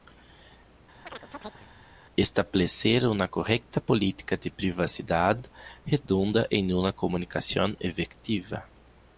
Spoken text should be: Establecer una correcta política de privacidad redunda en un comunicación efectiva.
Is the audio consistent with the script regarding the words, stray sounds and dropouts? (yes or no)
no